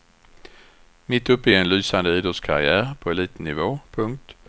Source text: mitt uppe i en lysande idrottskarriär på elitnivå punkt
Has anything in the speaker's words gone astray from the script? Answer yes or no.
no